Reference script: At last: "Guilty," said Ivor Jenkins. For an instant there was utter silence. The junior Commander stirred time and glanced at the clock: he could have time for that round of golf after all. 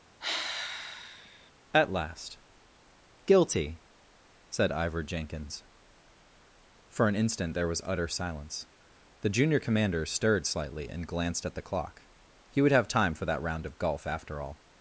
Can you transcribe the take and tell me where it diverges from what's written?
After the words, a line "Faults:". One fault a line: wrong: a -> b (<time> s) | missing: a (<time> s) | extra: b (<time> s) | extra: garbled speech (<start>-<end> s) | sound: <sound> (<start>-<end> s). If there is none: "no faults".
At last: "Guilty," said Ivor Jenkins. For an instant there was utter silence. The junior Commander stirred slightly and glanced at the clock: he would have time for that round of golf after all.
Faults:
sound: sigh (0.2-1.5 s)
wrong: time -> slightly (10.5 s)
wrong: could -> would (12.6 s)